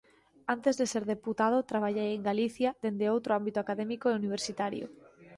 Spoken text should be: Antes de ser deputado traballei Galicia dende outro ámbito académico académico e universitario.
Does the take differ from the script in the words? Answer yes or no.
yes